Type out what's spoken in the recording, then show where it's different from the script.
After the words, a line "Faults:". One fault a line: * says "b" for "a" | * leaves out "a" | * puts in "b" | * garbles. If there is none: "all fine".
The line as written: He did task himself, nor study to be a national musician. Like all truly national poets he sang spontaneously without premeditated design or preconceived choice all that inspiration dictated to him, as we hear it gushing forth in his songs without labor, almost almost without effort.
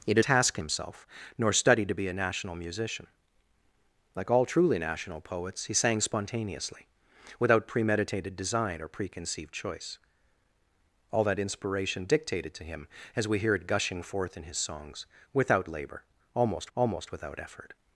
He did task himself, nor study to be a national musician. Like all truly national poets he sang spontaneously without premeditated design or preconceived choice all that inspiration dictated to him, as we hear it gushing forth in his songs without labor, almost almost without effort.
Faults:
all fine